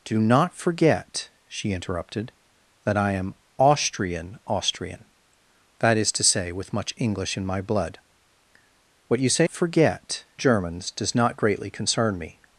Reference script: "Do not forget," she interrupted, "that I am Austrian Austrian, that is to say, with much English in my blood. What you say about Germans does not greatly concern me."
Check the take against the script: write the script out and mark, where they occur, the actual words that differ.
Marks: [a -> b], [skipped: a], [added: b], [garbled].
"Do not forget," she interrupted, "that I am Austrian Austrian, that is to say, with much English in my blood. What you say [about -> forget] Germans does not greatly concern me."